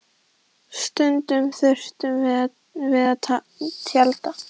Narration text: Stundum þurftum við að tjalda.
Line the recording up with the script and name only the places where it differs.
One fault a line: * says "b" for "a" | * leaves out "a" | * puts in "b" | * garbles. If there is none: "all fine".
all fine